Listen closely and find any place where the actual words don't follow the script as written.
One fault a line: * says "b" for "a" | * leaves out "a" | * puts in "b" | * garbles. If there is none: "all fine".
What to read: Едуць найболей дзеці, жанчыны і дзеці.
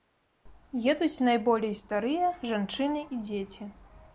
* says "старыя" for "дзеці"